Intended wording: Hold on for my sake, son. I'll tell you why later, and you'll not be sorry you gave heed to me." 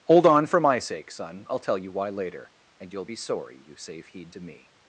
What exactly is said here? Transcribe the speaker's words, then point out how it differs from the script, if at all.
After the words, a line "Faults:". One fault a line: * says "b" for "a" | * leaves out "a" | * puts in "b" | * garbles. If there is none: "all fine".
Hold on for my sake, son. I'll tell you why later, and you'll be sorry you save heed to me."
Faults:
* leaves out "not"
* says "save" for "gave"